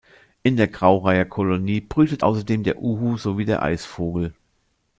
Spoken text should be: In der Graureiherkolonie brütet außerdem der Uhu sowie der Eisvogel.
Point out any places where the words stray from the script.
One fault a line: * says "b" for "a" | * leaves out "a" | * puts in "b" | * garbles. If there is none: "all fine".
all fine